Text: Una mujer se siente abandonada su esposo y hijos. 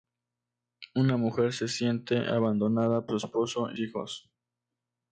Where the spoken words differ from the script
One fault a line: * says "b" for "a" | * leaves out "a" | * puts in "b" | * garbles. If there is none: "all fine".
all fine